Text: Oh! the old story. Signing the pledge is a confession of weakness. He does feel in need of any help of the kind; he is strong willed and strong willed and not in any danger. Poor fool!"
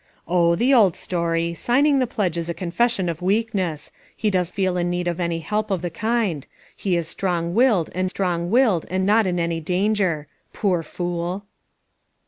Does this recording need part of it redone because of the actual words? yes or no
no